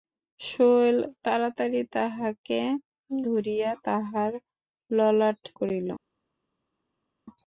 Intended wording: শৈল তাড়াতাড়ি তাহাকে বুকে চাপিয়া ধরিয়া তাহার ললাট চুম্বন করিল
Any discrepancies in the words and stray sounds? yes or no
yes